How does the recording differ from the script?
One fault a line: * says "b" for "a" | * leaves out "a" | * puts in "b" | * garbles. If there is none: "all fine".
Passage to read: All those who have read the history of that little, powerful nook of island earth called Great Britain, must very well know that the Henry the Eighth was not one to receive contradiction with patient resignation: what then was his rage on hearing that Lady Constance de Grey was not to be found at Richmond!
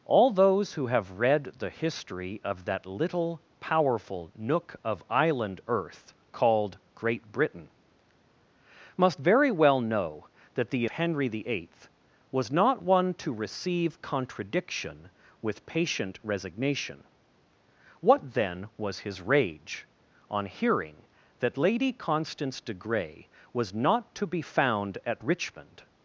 all fine